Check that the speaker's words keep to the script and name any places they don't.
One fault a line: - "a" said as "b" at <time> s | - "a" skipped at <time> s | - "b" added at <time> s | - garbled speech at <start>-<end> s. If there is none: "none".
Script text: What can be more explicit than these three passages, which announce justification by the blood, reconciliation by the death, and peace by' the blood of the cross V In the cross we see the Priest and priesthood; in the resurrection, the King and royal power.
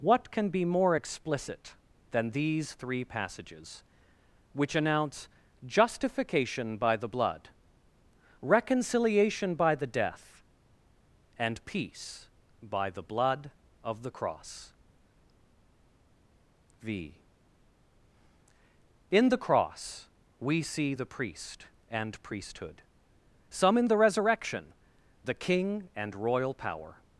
- "some" added at 23.5 s